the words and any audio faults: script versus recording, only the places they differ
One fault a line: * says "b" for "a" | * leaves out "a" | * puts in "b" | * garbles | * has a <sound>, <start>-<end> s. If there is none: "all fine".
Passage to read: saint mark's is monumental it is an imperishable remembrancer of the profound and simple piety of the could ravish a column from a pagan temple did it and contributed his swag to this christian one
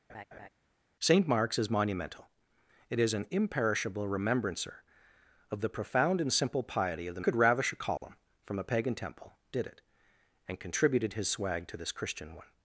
* has a laugh, 0.1-0.5 s
* has a dropout, 8.0-8.0 s